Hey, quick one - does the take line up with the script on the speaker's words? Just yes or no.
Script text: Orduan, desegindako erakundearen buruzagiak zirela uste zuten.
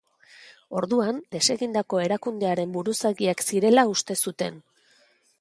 yes